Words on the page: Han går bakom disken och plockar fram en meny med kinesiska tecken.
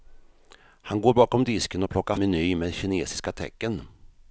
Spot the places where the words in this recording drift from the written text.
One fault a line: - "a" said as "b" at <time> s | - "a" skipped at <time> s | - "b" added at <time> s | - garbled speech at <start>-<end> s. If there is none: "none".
- "fram en" skipped at 2.2 s